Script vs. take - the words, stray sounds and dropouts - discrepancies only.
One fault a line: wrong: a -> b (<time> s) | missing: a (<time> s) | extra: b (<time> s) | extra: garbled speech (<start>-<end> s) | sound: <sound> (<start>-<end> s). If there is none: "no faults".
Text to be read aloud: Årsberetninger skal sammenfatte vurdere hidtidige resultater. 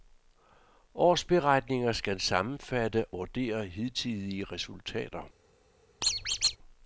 sound: squeak (6.0-6.6 s)